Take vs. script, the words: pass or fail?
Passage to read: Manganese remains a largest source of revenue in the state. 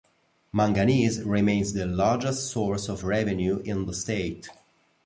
fail